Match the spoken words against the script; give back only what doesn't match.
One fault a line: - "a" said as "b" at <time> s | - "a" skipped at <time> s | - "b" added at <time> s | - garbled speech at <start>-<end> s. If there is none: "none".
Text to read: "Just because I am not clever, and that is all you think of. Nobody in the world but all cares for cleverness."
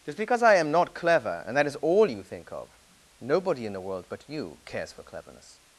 - "all" said as "you" at 4.3 s